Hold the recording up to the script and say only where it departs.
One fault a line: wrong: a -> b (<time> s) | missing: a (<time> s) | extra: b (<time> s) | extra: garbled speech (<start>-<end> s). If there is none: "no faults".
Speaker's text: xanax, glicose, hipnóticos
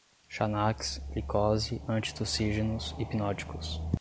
extra: antitussígenos (1.9 s)